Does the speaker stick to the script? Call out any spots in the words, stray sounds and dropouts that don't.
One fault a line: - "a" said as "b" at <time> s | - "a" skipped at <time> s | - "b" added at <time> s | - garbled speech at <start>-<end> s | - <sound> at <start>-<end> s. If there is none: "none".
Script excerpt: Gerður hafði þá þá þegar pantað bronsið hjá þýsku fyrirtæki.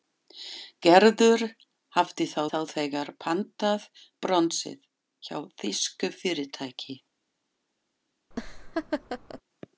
- laugh at 8.3-9.4 s